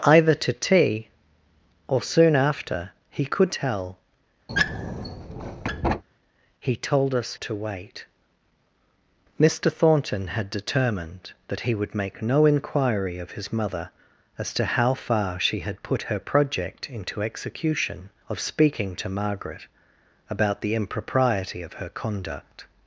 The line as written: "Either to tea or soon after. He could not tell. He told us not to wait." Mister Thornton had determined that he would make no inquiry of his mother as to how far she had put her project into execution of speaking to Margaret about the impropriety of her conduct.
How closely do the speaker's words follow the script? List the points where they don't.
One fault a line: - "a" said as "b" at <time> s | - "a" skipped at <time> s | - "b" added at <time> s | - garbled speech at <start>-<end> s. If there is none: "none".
- "not" skipped at 3.5 s
- "not" skipped at 7.4 s